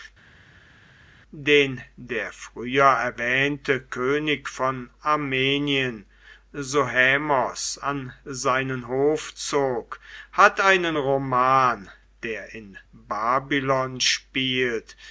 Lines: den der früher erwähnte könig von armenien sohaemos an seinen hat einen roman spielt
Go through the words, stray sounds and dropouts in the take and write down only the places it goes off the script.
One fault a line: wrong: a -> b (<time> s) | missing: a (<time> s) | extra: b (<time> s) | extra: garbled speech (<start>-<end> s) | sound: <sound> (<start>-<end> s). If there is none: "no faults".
extra: hof zog (8.9 s)
extra: der in babylon (12.2 s)